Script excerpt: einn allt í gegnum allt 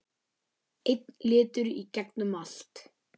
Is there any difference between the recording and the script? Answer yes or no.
yes